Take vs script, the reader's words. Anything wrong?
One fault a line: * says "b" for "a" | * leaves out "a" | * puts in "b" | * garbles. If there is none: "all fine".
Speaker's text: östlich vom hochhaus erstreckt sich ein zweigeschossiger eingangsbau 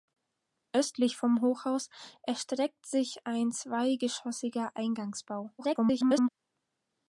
* garbles